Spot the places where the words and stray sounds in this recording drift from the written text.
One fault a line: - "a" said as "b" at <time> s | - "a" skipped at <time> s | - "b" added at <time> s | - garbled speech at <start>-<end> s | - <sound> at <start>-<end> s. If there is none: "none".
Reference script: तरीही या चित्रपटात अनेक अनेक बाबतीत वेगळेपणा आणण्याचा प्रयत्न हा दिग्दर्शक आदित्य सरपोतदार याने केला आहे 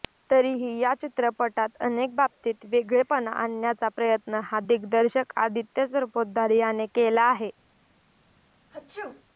- "अनेक" skipped at 2.1 s
- sneeze at 8.7-9.2 s